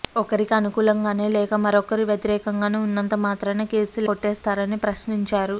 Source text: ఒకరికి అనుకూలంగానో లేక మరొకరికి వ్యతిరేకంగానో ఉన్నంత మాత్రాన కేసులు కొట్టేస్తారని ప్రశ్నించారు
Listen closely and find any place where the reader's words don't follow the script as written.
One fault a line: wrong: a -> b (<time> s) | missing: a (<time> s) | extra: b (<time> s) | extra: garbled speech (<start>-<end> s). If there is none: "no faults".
no faults